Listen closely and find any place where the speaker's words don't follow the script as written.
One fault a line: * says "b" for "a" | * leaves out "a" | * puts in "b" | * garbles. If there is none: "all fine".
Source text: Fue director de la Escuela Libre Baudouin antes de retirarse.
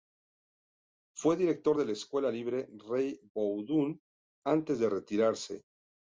* puts in "Rey"